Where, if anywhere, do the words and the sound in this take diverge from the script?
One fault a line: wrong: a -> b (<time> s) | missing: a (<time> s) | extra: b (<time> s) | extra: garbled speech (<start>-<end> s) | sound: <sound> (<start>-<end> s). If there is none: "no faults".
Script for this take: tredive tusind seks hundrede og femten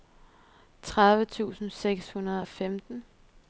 no faults